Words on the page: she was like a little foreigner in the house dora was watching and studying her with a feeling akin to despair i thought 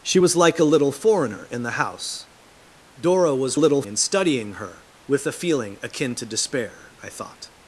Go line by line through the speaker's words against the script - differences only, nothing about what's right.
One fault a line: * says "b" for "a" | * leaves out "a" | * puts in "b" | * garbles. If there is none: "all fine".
* says "little" for "watching"